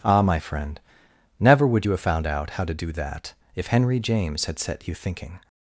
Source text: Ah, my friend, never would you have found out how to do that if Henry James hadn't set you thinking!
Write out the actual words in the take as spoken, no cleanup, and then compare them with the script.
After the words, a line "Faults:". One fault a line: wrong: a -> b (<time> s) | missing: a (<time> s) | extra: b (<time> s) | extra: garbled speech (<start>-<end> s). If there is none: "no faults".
Ah, my friend, never would you have found out how to do that if Henry James had set you thinking!
Faults:
wrong: hadn't -> had (4.4 s)